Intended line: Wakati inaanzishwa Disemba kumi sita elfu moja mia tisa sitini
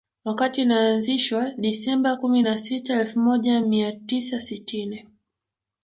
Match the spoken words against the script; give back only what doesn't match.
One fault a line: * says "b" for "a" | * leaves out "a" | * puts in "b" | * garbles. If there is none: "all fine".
* puts in "na"